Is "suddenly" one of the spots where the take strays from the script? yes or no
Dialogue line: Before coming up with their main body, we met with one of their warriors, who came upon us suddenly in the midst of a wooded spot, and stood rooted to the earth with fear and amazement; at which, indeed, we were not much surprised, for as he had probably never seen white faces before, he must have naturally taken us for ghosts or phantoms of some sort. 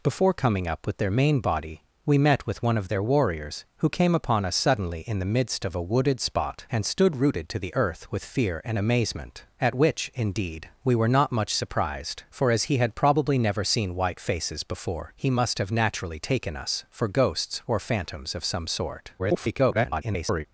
no